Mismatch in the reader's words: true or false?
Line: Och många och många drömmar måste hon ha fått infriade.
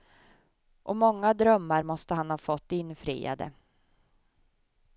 true